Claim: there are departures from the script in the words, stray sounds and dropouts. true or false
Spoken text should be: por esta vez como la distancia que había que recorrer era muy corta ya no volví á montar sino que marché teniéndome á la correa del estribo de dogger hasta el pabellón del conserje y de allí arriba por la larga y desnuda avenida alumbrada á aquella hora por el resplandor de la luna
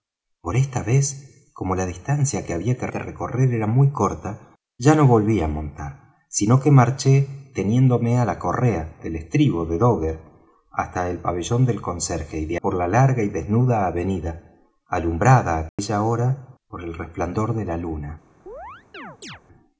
true